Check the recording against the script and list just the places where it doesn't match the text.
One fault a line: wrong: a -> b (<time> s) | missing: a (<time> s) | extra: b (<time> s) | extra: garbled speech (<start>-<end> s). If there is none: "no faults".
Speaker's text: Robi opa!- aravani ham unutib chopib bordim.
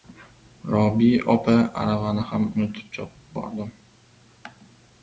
no faults